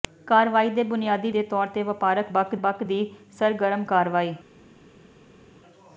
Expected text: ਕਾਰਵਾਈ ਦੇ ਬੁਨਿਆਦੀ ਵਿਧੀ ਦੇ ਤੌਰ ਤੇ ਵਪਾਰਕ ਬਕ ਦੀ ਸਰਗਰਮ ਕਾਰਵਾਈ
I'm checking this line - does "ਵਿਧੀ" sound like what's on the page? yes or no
no